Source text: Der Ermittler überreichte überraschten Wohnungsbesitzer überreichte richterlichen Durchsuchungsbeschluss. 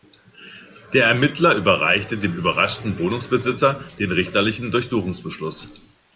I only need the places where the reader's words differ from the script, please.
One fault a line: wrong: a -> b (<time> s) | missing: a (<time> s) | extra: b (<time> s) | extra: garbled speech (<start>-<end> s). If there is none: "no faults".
extra: dem (2.2 s)
wrong: überreichte -> den (4.0 s)